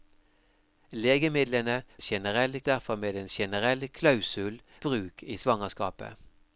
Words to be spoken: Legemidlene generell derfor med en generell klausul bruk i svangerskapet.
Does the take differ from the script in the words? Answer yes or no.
no